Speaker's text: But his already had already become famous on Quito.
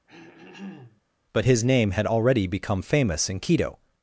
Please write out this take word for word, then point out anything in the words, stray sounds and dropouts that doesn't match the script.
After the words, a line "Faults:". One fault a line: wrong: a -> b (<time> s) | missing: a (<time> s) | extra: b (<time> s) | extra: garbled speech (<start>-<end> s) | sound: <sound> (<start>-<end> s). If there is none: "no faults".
But his name had already become famous in Quito.
Faults:
sound: throat clearing (0.1-1.0 s)
wrong: already -> name (1.6 s)
wrong: on -> in (3.3 s)